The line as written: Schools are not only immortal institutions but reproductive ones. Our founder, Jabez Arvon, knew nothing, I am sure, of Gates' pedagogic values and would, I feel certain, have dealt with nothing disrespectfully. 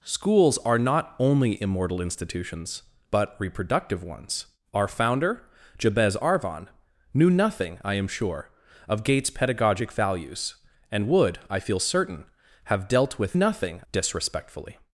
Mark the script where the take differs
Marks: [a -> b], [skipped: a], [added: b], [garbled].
Schools are not only immortal institutions but reproductive ones. Our founder, Jabez Arvon, knew nothing, I am sure, of Gates' pedagogic values and would, I feel certain, have dealt with nothing disrespectfully.